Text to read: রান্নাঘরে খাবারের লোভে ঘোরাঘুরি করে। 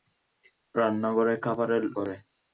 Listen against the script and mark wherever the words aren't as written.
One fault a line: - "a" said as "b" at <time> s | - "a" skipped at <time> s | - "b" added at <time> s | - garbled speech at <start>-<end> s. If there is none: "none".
- "লোভে ঘোরাঘুরি" skipped at 1.8 s